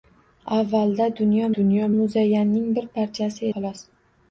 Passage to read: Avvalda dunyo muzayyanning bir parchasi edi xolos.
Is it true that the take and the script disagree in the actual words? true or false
true